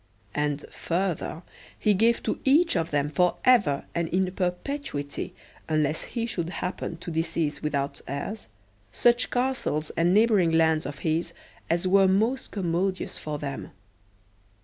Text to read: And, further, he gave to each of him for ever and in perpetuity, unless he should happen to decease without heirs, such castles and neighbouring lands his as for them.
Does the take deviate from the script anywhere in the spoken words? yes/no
yes